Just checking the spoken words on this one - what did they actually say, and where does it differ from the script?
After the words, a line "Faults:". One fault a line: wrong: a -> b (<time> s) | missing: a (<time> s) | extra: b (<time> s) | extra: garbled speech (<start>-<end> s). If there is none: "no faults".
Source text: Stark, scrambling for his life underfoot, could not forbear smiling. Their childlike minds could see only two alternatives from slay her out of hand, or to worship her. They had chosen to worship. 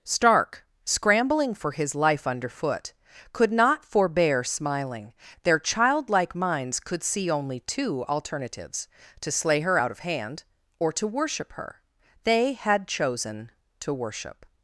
Stark, scrambling for his life underfoot, could not forbear smiling. Their childlike minds could see only two alternatives to slay her out of hand, or to worship her. They had chosen to worship.
Faults:
wrong: from -> to (9.2 s)